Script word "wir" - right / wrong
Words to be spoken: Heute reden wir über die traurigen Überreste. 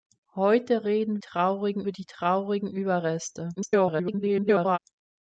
wrong